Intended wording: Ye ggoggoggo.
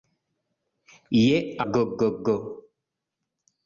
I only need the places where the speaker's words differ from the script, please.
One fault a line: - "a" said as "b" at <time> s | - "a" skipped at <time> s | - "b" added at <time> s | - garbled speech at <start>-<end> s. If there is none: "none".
none